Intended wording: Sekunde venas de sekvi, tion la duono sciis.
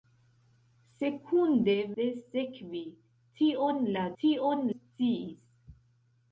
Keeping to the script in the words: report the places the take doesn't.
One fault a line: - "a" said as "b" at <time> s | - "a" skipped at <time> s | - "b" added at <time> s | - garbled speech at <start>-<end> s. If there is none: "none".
- "venas" skipped at 1.8 s
- "duono" said as "tion" at 4.2 s